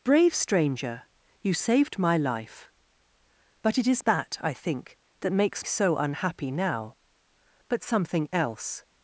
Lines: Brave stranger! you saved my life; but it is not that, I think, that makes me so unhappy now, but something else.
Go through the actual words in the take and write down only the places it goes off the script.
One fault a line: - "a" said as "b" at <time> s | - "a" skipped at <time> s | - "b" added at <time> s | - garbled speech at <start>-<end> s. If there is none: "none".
- "not" skipped at 4.0 s
- "me" skipped at 5.7 s